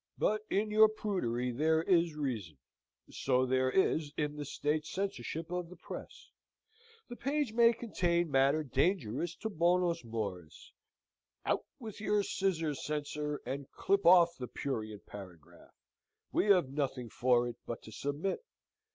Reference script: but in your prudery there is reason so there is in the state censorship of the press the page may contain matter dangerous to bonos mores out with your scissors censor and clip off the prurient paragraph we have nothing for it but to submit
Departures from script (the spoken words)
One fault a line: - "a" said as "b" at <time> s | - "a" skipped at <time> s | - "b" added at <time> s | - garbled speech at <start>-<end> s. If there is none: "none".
none